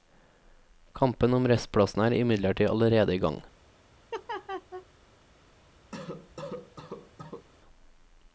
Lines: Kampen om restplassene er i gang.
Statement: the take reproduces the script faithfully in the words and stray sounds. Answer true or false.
false